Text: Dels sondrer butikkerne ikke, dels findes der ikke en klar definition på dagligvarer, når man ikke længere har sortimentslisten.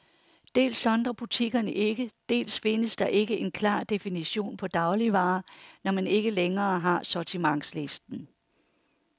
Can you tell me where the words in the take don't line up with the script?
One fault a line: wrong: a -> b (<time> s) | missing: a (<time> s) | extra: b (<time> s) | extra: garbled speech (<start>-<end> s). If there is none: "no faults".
no faults